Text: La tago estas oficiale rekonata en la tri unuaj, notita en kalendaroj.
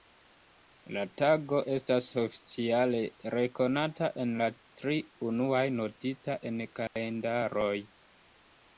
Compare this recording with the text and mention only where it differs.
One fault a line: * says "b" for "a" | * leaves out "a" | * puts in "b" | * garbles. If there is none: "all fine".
all fine